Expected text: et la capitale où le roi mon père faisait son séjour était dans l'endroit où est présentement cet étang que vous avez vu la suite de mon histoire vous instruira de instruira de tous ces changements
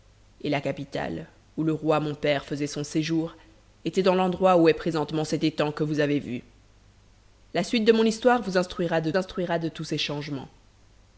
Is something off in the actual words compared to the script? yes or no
no